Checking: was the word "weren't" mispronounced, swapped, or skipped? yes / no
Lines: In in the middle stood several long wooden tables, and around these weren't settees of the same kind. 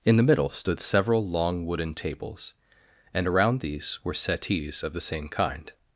yes